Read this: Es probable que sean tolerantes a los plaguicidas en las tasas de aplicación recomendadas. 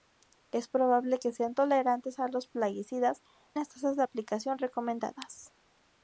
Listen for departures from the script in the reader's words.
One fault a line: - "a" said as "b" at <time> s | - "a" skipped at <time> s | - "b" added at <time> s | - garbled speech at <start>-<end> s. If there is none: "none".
- "en" skipped at 3.2 s